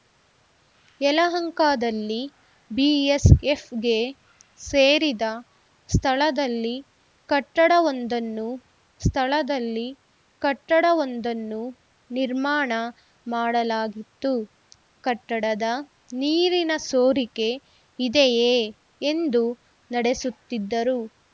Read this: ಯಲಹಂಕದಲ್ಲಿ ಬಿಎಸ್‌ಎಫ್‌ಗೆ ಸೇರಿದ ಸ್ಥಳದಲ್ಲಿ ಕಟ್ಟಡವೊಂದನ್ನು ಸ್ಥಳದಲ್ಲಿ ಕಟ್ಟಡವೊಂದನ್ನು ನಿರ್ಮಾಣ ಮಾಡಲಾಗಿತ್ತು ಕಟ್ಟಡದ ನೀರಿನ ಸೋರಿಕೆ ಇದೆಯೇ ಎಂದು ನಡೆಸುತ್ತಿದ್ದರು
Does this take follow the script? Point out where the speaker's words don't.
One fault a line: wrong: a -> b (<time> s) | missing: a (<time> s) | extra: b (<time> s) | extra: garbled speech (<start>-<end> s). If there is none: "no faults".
no faults